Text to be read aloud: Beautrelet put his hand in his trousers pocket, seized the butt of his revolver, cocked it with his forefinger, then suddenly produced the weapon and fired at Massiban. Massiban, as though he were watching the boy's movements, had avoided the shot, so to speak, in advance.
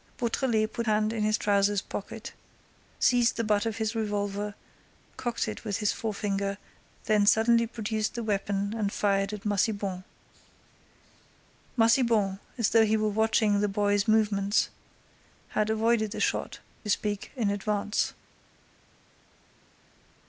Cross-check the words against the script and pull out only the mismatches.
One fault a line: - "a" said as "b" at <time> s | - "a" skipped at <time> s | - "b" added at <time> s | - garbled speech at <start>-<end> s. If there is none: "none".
- "his" skipped at 0.9 s
- "so to" skipped at 16.6 s